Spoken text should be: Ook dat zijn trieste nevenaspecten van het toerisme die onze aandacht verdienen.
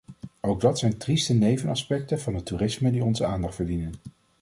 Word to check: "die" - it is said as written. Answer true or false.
true